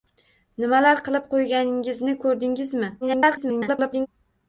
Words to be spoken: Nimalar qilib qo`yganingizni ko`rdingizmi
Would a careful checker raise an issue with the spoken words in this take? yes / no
yes